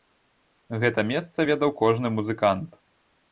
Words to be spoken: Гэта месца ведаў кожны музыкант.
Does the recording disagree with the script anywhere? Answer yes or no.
no